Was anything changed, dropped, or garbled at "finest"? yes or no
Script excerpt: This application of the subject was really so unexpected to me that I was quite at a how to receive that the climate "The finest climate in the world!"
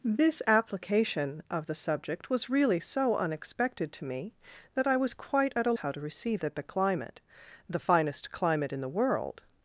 no